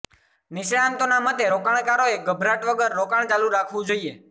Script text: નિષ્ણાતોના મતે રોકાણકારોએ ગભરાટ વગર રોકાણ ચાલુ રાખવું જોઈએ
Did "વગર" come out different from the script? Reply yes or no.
no